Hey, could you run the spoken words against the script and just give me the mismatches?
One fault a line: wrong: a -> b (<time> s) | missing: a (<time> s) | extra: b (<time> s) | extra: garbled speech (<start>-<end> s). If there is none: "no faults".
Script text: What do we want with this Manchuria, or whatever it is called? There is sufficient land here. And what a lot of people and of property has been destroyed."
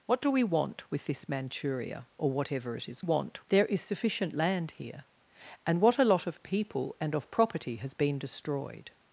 wrong: called -> want (3.0 s)